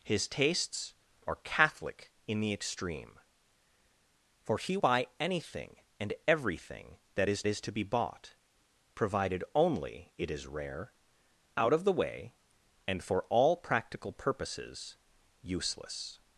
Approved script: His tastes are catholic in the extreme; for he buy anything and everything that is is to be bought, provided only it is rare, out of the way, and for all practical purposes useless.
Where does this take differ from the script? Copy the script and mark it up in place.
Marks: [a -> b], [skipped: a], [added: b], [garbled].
His tastes are catholic in the extreme; for he buy anything and everything that is is to be bought, provided only it is rare, out of the way, and for all practical purposes useless.